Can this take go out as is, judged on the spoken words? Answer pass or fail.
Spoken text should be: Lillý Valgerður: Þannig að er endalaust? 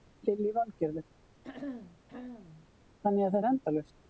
pass